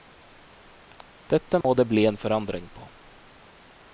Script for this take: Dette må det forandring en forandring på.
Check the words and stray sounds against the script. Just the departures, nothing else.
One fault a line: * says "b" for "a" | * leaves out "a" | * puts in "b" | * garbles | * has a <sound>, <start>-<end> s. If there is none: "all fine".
* has a dropout, 1.6-1.6 s
* says "bli" for "forandring"